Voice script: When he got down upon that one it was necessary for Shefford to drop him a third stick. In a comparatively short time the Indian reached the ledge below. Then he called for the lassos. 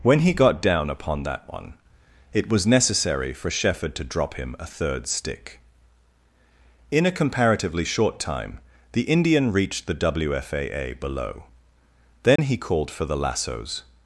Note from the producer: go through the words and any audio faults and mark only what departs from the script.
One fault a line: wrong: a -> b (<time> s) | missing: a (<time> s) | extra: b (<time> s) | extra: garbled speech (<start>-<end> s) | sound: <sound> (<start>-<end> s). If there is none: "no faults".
wrong: ledge -> wfaa (9.9 s)
sound: dropout (12.4-12.4 s)